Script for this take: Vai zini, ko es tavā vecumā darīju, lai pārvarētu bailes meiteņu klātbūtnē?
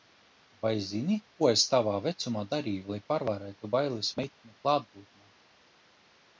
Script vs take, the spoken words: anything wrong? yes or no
no